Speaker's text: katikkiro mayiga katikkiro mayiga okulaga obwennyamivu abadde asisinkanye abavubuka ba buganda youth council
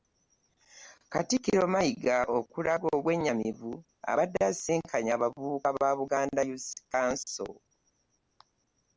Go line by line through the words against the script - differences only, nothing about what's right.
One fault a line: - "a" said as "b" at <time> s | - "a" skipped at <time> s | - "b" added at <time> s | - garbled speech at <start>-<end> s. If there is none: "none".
- "katikkiro mayiga" skipped at 2.2 s